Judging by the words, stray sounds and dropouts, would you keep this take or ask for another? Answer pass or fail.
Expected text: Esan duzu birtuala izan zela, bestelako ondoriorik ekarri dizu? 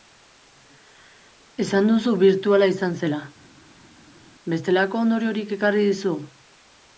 pass